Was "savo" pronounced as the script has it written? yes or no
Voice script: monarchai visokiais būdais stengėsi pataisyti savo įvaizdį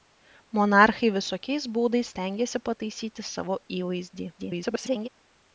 yes